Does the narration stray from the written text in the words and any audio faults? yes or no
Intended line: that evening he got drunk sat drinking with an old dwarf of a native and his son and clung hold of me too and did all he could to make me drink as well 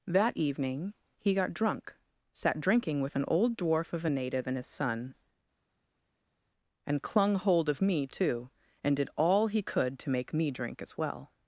no